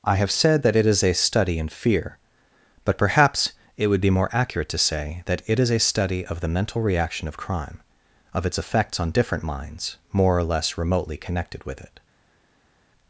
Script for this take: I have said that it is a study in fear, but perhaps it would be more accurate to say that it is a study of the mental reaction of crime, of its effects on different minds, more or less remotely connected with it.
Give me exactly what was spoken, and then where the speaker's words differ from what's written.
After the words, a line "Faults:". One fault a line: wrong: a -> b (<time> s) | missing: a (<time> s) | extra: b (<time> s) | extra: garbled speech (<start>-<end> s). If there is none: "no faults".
I have said that it is a study in fear, but perhaps it would be more accurate to say that it is a study of the mental reaction of crime, of its effects on different minds, more or less remotely connected with it.
Faults:
no faults